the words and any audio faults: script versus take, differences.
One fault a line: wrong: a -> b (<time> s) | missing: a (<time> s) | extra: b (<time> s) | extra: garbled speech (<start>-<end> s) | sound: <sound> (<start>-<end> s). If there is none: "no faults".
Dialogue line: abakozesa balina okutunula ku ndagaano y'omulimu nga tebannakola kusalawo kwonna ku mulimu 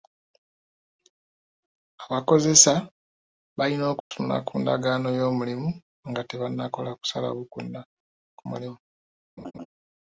sound: dropout (4.0-4.1 s)
sound: laugh (9.4-9.7 s)